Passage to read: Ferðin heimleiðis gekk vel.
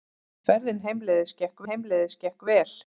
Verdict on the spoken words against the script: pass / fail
fail